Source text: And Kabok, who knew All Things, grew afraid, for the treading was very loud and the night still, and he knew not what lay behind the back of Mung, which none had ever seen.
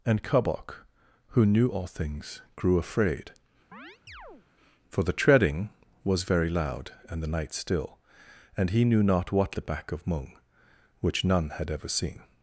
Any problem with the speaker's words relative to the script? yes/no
yes